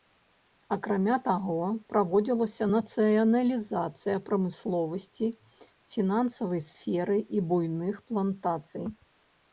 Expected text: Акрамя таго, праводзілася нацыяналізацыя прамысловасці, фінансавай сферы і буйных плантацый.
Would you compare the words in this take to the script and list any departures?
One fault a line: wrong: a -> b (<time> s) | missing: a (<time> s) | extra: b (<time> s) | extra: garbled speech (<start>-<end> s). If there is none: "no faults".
no faults